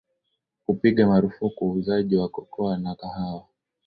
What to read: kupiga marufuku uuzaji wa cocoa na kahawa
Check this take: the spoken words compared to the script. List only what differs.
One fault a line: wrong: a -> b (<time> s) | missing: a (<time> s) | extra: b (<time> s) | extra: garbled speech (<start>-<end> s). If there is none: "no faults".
no faults